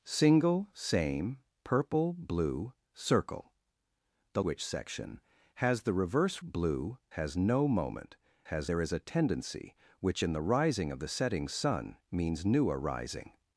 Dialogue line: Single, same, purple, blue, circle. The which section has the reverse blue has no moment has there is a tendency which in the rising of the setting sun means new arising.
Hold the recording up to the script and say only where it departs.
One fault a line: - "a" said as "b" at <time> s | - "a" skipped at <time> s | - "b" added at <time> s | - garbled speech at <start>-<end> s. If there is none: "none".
none